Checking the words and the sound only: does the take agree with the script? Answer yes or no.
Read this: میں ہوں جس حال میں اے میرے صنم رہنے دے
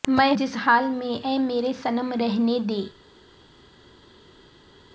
no